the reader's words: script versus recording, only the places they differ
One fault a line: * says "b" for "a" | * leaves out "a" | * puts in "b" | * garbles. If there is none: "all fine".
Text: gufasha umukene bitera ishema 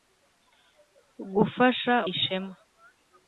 * leaves out "umukene bitera"